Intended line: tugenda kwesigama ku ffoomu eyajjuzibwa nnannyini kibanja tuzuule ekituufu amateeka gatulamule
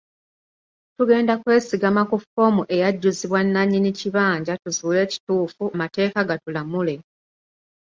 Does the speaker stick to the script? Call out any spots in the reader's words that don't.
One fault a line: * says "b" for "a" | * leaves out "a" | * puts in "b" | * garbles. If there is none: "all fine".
all fine